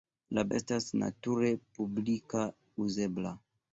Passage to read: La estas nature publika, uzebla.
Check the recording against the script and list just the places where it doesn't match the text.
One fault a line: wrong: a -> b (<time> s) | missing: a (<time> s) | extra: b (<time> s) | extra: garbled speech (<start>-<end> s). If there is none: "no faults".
no faults